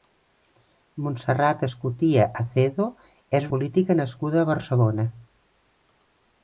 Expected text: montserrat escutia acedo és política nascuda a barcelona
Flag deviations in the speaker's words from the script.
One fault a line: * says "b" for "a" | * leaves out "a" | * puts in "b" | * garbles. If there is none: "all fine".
all fine